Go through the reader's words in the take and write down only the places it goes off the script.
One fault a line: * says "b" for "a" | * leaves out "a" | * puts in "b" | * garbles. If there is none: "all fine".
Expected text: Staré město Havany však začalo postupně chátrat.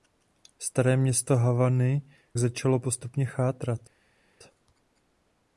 * leaves out "však"